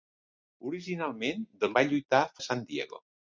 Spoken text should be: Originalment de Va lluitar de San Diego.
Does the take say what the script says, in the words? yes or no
yes